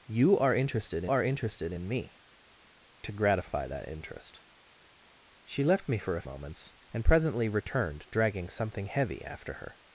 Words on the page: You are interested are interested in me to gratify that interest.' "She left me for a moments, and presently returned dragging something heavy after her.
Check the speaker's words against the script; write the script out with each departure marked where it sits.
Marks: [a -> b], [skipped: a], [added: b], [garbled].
You are interested are interested in me to gratify that interest.' "She left me for a moments, and presently returned dragging something heavy after her.